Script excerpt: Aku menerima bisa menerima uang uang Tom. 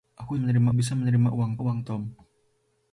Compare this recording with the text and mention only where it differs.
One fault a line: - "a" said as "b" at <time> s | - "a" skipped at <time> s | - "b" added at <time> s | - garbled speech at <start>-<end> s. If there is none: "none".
none